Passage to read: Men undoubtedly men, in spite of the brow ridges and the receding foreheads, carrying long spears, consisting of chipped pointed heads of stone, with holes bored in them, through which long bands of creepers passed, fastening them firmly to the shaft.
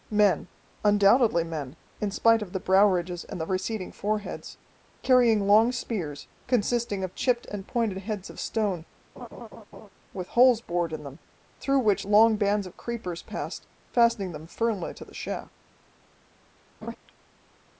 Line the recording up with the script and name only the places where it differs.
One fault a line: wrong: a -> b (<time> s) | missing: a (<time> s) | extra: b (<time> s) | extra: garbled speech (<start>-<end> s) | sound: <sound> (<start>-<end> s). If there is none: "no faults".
extra: and (7.5 s)
sound: laugh (9.2-9.9 s)
sound: laugh (16.8-17.0 s)